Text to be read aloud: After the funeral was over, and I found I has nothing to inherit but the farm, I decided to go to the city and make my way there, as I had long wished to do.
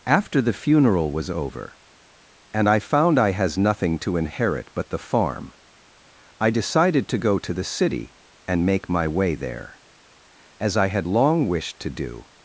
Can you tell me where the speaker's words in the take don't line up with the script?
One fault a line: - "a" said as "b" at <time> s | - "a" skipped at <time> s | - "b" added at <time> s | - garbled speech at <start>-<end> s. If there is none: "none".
none